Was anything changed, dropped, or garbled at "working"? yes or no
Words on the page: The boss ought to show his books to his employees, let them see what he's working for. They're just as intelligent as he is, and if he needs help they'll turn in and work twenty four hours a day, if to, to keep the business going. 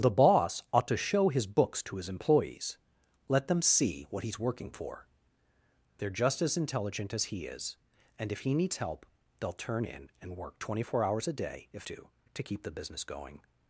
no